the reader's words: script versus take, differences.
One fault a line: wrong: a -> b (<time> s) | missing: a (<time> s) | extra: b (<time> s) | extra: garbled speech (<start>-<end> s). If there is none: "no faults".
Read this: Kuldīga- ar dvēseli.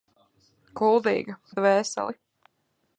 no faults